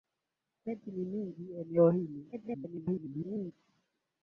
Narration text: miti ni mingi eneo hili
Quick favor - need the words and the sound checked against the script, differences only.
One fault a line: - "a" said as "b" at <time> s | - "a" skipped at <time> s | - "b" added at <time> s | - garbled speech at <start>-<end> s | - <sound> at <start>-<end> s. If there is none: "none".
- garbled speech at 2.3-3.5 s